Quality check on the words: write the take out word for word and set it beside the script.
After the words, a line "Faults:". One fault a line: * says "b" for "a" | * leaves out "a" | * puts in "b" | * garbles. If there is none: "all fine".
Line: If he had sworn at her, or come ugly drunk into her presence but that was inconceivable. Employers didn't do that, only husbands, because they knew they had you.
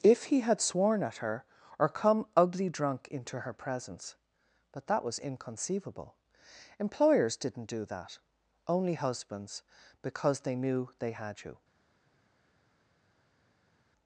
If he had sworn at her, or come ugly drunk into her presence but that was inconceivable. Employers didn't do that, only husbands, because they knew they had you.
Faults:
all fine